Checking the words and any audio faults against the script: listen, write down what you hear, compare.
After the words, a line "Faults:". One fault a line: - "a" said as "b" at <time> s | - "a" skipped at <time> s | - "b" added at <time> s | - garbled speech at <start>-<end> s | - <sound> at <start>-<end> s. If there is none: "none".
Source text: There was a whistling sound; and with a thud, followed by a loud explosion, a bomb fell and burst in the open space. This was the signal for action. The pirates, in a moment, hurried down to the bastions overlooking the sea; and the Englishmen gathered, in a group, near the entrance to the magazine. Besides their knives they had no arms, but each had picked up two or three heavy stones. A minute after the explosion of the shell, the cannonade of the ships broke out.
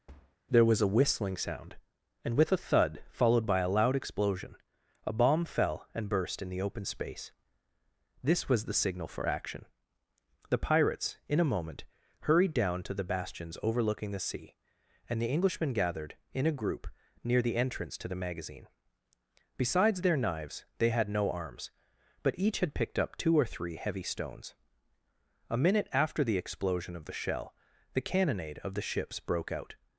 There was a whistling sound; and with a thud, followed by a loud explosion, a bomb fell and burst in the open space. This was the signal for action. The pirates, in a moment, hurried down to the bastions overlooking the sea; and the Englishmen gathered, in a group, near the entrance to the magazine. Besides their knives they had no arms, but each had picked up two or three heavy stones. A minute after the explosion of the shell, the cannonade of the ships broke out.
Faults:
- thud at 0.1-0.4 s